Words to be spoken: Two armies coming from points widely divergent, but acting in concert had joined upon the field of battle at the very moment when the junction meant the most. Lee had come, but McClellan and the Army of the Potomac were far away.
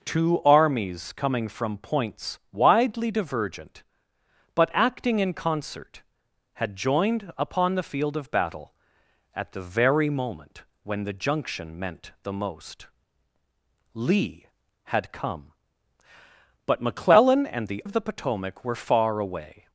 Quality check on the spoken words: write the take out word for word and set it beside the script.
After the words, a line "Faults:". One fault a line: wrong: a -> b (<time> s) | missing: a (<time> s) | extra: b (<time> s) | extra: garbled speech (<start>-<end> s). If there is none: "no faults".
Two armies coming from points widely divergent, but acting in concert had joined upon the field of battle at the very moment when the junction meant the most. Lee had come, but McClellan and the Of the Potomac were far away.
Faults:
missing: Army (17.8 s)